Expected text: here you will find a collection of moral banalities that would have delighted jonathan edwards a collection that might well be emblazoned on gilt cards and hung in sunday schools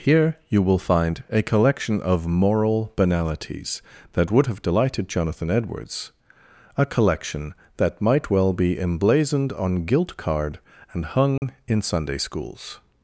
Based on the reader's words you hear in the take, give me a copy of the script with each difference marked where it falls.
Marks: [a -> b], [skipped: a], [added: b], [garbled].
here you will find a collection of moral banalities that would have delighted jonathan edwards a collection that might well be emblazoned on gilt [cards -> card] and hung in sunday schools